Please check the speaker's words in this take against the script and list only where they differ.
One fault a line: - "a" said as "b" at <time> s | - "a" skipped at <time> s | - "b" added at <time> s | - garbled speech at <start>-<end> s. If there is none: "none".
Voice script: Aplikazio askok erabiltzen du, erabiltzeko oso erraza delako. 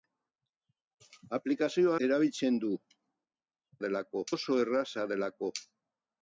- "askok" skipped at 1.9 s
- "erabiltzeko" said as "delako" at 3.9 s